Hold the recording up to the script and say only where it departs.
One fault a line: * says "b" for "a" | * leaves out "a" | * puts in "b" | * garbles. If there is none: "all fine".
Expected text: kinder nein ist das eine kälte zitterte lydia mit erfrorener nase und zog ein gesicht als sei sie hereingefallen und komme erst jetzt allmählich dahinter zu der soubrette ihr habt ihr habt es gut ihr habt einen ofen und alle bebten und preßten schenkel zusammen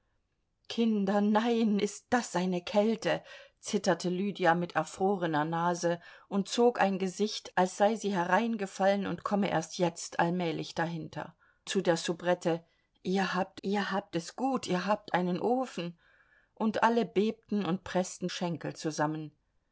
all fine